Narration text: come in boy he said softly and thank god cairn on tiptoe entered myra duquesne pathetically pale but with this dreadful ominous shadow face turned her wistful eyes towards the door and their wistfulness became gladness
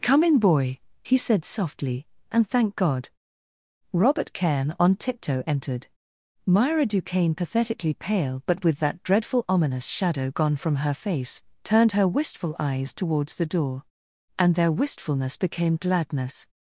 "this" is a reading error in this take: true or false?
true